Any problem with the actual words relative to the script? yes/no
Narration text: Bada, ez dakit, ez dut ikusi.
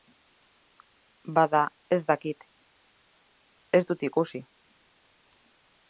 no